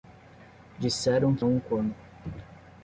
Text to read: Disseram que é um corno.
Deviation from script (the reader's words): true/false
false